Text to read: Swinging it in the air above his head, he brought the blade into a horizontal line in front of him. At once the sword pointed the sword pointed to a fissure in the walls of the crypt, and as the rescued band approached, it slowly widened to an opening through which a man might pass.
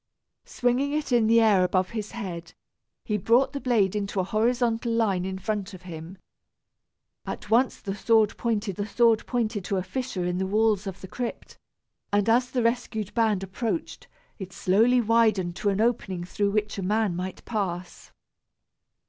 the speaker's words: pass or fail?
pass